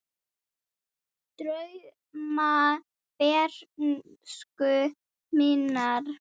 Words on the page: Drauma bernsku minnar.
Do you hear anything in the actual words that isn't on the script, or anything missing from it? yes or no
no